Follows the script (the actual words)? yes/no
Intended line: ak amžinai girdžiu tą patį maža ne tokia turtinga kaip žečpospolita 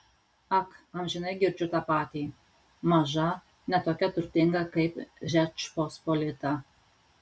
yes